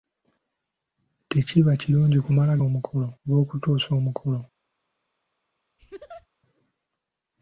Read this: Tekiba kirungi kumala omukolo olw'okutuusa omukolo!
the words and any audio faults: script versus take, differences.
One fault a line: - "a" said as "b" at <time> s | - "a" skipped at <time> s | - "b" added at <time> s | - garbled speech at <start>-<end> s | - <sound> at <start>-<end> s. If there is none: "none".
- laugh at 5.8-6.3 s